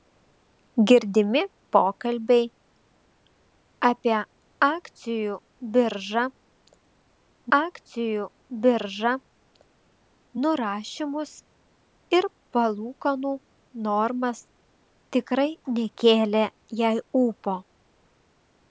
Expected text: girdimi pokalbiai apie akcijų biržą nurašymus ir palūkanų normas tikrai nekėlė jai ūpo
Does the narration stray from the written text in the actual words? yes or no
yes